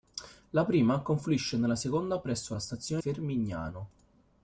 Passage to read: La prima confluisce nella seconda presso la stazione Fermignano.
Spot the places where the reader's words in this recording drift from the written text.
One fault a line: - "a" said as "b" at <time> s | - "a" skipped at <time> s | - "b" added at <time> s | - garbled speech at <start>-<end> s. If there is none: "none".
none